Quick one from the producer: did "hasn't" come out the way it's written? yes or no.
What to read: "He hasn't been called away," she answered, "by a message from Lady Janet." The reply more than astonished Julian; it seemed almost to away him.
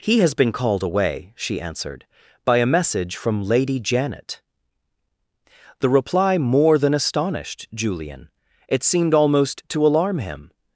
no